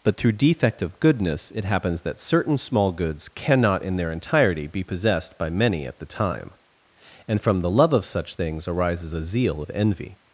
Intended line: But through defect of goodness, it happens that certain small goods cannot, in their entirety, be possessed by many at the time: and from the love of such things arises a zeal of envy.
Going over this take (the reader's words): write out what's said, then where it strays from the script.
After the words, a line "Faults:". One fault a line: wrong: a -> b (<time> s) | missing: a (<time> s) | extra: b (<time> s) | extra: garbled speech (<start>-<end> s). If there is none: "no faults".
But through defect of goodness, it happens that certain small goods cannot, in their entirety, be possessed by many at the time: and from the love of such things arises a zeal of envy.
Faults:
no faults